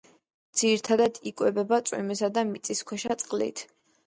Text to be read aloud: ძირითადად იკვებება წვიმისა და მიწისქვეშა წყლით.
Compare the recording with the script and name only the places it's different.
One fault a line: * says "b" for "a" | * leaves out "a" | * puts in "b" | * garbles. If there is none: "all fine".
all fine